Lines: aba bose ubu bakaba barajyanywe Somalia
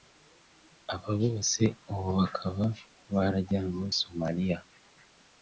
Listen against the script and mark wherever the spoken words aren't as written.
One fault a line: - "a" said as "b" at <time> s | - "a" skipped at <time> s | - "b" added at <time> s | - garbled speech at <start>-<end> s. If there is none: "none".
none